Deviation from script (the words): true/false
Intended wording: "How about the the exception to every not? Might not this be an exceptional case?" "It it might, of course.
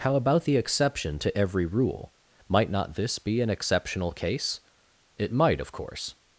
true